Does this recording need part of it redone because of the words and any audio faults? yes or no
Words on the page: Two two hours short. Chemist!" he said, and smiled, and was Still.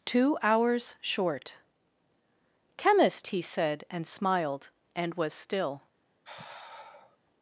yes